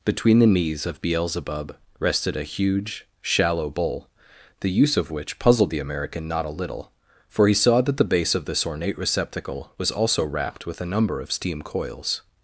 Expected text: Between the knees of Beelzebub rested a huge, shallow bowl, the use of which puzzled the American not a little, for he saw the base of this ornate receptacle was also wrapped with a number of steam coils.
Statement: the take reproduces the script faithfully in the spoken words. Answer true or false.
false